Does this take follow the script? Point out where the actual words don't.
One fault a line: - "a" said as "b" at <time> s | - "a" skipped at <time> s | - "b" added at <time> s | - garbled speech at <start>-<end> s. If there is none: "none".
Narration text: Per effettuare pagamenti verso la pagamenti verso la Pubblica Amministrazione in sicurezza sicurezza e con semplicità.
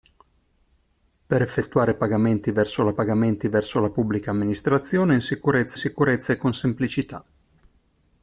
none